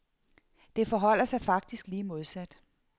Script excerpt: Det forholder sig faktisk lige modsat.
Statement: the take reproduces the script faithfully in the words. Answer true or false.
true